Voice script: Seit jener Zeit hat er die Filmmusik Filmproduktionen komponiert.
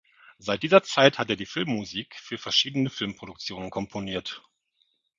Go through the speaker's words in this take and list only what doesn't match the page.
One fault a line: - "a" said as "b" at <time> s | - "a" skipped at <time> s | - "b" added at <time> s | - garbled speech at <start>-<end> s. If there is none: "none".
- "jener" said as "dieser" at 0.6 s
- "für verschiedene" added at 2.1 s